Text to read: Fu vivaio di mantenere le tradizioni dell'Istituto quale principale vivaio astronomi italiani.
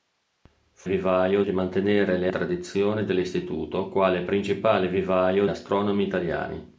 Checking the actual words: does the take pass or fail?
pass